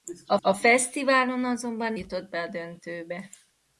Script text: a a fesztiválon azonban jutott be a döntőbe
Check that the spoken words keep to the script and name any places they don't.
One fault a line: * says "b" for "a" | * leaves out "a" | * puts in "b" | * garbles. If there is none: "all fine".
all fine